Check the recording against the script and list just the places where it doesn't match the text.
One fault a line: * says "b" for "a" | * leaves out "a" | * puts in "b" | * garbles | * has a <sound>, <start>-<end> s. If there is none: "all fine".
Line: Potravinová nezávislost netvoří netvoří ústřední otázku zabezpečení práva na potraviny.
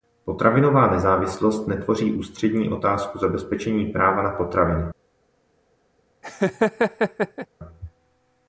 * leaves out "netvoří"
* has a laugh, 6.2-7.5 s